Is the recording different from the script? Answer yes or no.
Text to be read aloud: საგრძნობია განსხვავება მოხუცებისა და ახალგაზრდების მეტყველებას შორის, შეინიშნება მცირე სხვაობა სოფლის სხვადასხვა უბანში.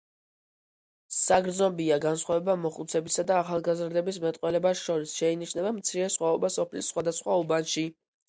no